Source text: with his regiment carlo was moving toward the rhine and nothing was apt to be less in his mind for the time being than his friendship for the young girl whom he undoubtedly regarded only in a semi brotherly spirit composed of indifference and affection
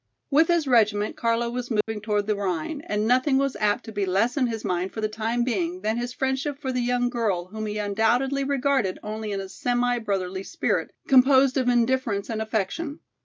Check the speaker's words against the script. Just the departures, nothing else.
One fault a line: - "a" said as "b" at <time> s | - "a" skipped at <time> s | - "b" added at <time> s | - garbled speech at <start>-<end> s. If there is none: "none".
none